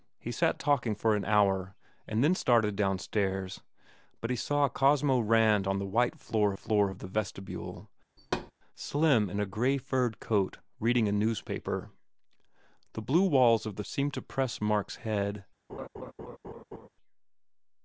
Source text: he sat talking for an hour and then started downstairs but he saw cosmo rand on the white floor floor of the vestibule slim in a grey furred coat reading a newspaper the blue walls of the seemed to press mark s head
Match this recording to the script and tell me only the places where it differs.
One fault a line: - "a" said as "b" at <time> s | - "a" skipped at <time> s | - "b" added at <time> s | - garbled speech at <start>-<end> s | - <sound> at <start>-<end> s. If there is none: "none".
- thud at 8.2-8.5 s
- laugh at 15.7-16.9 s